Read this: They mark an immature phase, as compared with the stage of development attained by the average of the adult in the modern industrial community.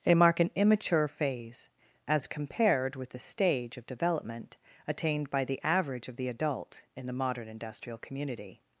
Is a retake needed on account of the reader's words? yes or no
no